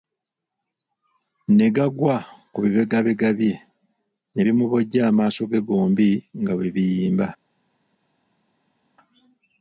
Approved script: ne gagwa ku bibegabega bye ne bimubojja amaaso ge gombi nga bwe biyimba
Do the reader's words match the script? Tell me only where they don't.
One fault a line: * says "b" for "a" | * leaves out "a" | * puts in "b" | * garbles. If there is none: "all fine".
all fine